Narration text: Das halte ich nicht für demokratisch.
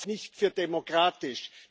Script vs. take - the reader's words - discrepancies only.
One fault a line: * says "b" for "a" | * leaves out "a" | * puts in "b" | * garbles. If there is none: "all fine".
* leaves out "halte ich"